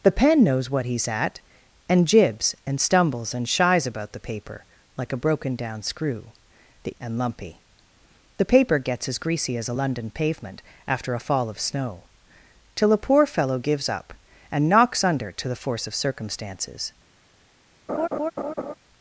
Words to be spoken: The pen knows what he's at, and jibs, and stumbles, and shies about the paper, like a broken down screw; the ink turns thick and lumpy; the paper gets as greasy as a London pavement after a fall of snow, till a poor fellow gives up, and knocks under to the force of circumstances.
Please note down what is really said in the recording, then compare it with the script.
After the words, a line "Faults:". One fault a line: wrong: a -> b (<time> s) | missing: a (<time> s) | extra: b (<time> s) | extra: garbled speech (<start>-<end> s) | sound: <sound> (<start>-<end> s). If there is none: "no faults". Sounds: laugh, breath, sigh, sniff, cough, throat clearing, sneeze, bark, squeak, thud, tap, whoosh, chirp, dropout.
The pen knows what he's at, and jibs, and stumbles, and shies about the paper, like a broken down screw; the and lumpy; the paper gets as greasy as a London pavement after a fall of snow, till a poor fellow gives up, and knocks under to the force of circumstances.
Faults:
missing: ink turns thick (6.9 s)
sound: laugh (17.9-18.7 s)